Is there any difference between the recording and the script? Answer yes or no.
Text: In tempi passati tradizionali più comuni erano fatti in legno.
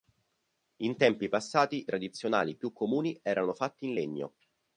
no